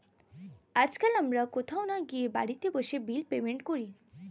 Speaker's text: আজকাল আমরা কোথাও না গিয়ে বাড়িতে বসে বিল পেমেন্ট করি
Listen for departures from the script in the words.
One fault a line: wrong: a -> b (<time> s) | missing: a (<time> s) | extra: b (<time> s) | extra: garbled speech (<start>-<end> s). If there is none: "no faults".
no faults